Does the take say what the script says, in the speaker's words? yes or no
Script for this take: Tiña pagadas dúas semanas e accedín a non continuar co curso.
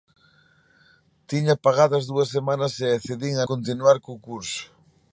no